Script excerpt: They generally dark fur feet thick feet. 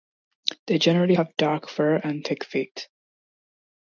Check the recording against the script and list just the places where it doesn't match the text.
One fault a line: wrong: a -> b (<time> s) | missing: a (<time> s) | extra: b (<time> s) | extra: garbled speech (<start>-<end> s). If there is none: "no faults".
extra: have (1.1 s)
wrong: feet -> and (2.0 s)